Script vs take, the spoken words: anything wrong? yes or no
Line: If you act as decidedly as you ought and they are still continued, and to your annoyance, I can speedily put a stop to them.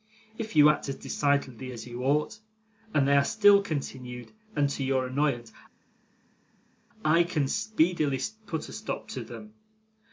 no